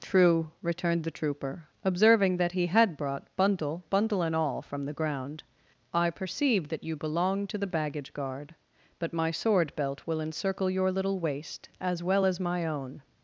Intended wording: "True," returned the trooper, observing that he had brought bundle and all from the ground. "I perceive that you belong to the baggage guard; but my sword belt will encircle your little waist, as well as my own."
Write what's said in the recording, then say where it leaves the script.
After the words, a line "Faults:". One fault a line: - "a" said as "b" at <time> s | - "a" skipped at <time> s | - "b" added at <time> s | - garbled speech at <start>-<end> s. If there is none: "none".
"True," returned the trooper, observing that he had brought bundle bundle and all from the ground. "I perceive that you belong to the baggage guard; but my sword belt will encircle your little waist, as well as my own."
Faults:
- "bundle" added at 3.9 s